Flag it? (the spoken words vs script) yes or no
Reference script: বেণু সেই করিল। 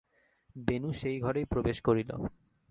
yes